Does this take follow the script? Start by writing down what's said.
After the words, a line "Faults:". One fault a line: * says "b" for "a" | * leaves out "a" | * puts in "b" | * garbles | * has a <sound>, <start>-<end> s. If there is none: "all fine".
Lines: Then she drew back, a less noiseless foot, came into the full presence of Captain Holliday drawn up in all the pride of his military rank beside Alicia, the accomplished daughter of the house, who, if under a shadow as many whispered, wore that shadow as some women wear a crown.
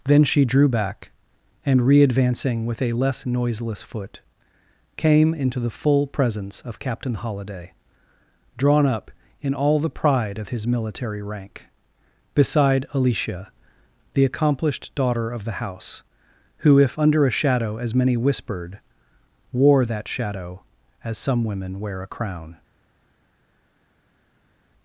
Then she drew back, and readvancing with a less noiseless foot, came into the full presence of Captain Holliday drawn up in all the pride of his military rank beside Alicia, the accomplished daughter of the house, who, if under a shadow as many whispered, wore that shadow as some women wear a crown.
Faults:
* puts in "and readvancing with"